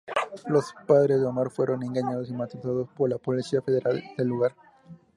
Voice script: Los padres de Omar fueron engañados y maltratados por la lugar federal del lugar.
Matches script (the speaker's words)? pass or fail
fail